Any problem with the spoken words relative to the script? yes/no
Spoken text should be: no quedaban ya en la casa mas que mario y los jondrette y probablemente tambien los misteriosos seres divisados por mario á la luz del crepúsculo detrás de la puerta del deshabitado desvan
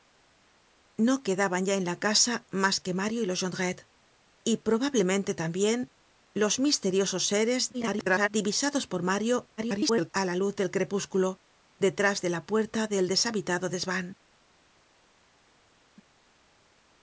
yes